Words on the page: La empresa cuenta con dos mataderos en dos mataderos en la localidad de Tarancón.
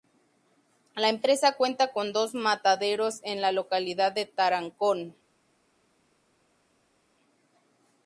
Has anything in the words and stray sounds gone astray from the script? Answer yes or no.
yes